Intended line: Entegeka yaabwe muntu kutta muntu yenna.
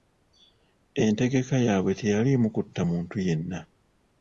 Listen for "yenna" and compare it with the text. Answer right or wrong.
right